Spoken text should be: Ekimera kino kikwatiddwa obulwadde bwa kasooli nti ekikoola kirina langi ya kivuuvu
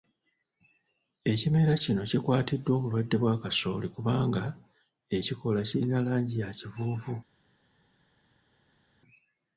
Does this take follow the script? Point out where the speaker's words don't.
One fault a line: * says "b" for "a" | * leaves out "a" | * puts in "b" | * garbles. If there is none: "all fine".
* says "kubanga" for "nti"